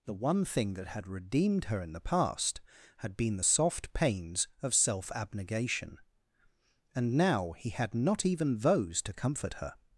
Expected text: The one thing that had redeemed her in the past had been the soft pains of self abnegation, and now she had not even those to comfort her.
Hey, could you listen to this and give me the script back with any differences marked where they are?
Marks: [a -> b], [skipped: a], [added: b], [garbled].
The one thing that had redeemed her in the past had been the soft pains of self abnegation, and now [she -> he] had not even those to comfort her.